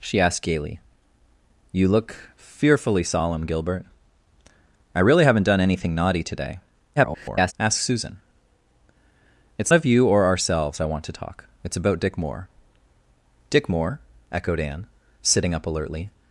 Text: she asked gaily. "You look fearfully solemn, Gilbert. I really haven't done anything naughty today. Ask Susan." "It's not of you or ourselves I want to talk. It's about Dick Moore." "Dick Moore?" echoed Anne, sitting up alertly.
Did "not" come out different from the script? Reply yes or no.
yes